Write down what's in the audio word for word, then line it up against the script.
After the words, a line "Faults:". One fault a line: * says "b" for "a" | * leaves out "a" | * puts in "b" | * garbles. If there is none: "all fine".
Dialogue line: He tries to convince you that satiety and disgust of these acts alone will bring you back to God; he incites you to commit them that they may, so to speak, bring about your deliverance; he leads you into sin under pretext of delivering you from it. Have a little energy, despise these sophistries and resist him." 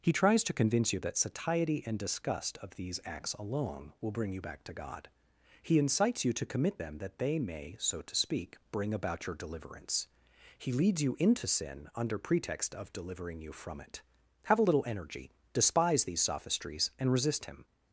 He tries to convince you that satiety and disgust of these acts alone will bring you back to God; he incites you to commit them that they may, so to speak, bring about your deliverance; he leads you into sin under pretext of delivering you from it. Have a little energy, despise these sophistries and resist him."
Faults:
all fine